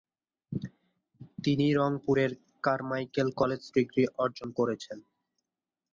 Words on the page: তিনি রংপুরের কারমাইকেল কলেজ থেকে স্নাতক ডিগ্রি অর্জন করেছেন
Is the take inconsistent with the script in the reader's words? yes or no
yes